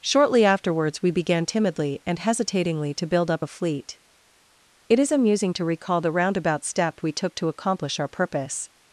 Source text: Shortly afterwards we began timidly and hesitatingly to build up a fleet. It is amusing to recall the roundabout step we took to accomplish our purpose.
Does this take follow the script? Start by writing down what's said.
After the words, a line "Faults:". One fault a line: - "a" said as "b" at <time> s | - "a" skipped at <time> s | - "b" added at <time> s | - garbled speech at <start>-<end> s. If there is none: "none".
Shortly afterwards we began timidly and hesitatingly to build up a fleet. It is amusing to recall the roundabout step we took to accomplish our purpose.
Faults:
none